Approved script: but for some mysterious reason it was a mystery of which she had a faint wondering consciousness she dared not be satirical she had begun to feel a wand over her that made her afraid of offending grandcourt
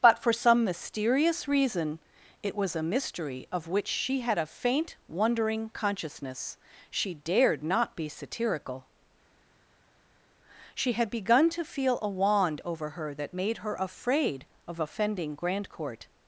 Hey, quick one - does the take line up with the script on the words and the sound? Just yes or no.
yes